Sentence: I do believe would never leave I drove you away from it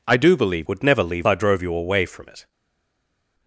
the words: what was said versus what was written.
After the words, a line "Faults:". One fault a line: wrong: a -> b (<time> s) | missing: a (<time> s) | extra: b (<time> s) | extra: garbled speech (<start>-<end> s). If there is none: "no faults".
I do believe would never leave I drove you away from it
Faults:
no faults